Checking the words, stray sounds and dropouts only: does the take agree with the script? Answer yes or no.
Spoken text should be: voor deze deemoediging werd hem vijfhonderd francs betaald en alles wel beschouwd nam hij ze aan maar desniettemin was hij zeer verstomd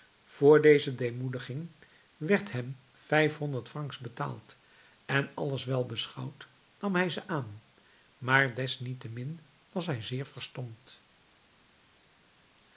yes